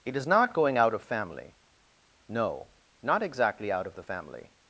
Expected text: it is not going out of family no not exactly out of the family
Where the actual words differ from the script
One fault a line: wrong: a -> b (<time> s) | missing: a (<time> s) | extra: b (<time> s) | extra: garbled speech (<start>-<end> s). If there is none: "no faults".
no faults